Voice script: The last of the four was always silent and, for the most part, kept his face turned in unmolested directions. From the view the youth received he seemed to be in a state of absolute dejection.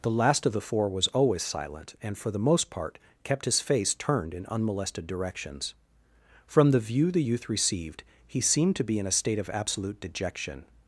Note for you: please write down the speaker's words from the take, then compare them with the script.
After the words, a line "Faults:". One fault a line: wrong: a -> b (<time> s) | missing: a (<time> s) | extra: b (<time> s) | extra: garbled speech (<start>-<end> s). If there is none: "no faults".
The last of the four was always silent and, for the most part, kept his face turned in unmolested directions. From the view the youth received he seemed to be in a state of absolute dejection.
Faults:
no faults